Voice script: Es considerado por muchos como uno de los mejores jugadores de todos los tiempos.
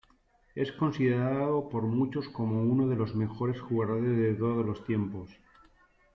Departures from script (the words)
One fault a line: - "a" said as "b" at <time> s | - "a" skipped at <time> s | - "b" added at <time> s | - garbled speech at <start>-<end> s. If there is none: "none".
none